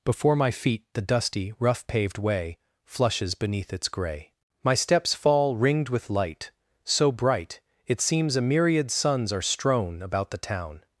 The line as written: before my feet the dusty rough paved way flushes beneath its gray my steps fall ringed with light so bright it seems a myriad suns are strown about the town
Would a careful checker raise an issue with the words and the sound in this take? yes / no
no